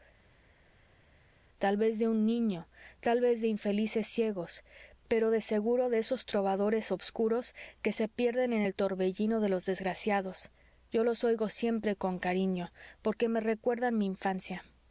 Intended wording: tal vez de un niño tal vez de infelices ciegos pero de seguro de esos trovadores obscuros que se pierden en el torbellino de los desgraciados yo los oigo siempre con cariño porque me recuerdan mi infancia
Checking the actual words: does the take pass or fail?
pass